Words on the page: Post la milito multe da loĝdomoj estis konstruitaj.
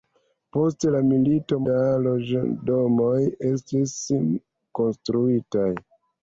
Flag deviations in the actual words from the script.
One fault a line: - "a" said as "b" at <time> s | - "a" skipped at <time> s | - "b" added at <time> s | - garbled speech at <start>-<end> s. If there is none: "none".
- "multe" skipped at 1.6 s